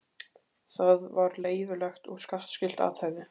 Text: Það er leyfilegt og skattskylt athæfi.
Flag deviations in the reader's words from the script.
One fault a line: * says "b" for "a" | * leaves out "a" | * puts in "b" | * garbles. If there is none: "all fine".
* says "var" for "er"